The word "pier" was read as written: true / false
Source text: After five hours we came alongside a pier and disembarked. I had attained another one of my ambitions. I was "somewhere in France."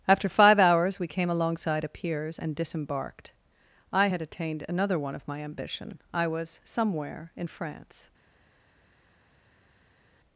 false